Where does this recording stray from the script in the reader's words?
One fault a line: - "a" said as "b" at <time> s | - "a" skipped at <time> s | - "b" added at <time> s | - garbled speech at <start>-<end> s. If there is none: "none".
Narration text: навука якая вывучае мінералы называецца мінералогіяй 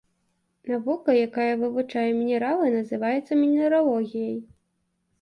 none